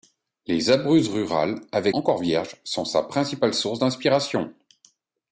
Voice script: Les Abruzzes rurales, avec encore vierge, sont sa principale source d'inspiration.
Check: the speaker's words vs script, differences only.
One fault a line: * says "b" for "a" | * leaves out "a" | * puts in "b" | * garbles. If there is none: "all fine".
all fine